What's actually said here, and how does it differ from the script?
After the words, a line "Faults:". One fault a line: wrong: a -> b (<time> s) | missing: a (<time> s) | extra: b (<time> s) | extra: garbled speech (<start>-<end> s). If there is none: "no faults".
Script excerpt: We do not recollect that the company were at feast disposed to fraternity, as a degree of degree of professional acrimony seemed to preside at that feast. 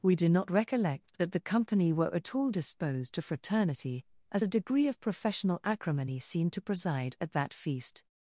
We do not recollect that the company were at all disposed to fraternity, as a degree of professional acrimony seemed to preside at that feast.
Faults:
wrong: feast -> all (2.3 s)
missing: degree of (5.0 s)